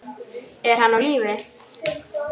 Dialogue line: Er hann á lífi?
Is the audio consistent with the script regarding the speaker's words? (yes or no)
yes